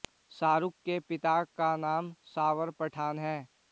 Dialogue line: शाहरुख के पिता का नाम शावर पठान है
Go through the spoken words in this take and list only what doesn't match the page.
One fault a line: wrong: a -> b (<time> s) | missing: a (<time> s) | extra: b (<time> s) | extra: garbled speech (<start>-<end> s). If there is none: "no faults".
no faults